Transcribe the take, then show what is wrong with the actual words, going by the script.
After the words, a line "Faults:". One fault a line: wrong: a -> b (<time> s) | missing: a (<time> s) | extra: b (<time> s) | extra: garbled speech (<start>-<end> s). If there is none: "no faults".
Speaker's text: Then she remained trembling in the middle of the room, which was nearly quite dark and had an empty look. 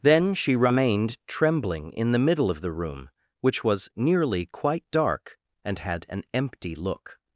Then she remained trembling in the middle of the room, which was nearly quite dark and had an empty look.
Faults:
no faults